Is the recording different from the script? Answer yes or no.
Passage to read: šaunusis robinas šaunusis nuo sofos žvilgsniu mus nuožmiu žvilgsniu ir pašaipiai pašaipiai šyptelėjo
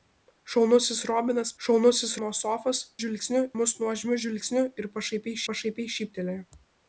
no